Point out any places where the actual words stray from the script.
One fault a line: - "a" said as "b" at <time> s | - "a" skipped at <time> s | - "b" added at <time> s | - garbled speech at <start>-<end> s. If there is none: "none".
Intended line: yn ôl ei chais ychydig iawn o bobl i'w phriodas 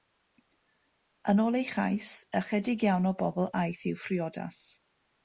- "aeth" added at 3.6 s